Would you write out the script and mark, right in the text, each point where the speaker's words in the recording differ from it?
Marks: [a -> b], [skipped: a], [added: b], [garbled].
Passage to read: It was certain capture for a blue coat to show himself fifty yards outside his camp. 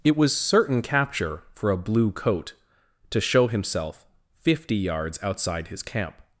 It was certain capture for a blue coat to show himself fifty yards outside his camp.